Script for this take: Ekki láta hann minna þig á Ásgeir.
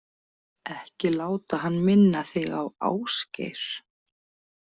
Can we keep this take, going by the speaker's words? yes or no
yes